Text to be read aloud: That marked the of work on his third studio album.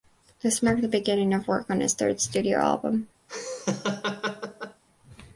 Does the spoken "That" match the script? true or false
false